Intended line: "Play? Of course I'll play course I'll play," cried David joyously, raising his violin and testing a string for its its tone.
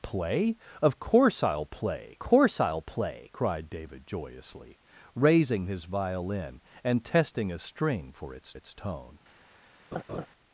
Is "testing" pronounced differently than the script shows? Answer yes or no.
no